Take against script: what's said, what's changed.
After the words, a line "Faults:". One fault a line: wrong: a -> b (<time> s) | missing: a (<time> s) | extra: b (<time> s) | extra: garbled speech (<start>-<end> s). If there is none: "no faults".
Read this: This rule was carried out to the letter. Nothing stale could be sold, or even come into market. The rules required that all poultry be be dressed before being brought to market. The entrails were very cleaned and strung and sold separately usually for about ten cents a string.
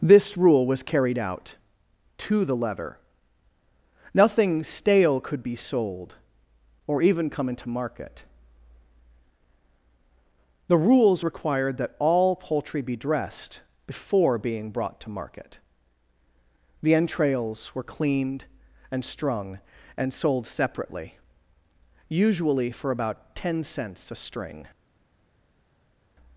This rule was carried out to the letter. Nothing stale could be sold, or even come into market. The rules required that all poultry be dressed before being brought to market. The entrails were cleaned and strung and sold separately usually for about ten cents a string.
Faults:
missing: be (12.9 s)
missing: very (17.8 s)